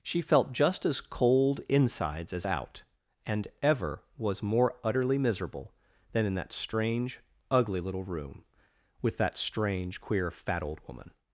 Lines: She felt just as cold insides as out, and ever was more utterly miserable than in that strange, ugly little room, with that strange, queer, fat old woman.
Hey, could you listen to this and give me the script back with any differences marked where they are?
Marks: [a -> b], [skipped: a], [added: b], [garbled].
She felt just as cold insides as out, and ever was more utterly miserable than in that strange, ugly little room, with that strange, queer, fat old woman.